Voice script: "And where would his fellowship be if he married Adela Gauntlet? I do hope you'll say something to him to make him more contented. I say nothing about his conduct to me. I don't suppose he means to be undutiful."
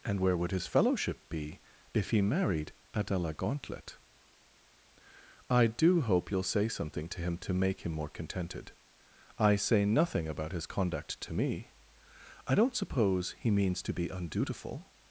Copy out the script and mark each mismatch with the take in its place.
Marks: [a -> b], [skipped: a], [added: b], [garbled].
"And where would his fellowship be if he married Adela Gauntlet? I do hope you'll say something to him to make him more contented. I say nothing about his conduct to me. I don't suppose he means to be undutiful."